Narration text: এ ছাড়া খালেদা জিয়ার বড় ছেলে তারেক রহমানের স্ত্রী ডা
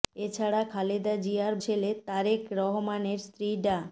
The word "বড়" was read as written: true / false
false